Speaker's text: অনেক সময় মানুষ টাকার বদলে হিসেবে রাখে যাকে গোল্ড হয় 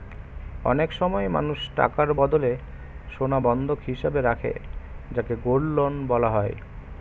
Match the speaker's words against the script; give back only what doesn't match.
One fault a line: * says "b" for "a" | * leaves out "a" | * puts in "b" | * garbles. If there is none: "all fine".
* puts in "সোনা বন্ধক"
* puts in "লোন বলা"